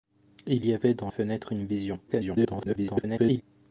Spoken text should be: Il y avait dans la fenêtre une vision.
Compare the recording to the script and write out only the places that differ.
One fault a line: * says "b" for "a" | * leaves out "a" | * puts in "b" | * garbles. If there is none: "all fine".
* leaves out "la"
* garbles